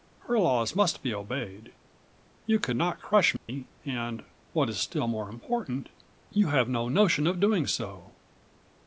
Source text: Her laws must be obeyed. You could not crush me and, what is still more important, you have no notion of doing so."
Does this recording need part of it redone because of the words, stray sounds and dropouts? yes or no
yes